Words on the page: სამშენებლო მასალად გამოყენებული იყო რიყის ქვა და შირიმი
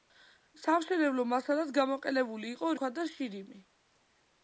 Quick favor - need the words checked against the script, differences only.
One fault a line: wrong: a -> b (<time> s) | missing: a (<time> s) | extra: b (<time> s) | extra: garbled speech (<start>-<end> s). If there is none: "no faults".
missing: რიყის (2.7 s)